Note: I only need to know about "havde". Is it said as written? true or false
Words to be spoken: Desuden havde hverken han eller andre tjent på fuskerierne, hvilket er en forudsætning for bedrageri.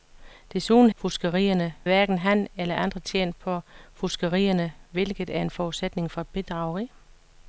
false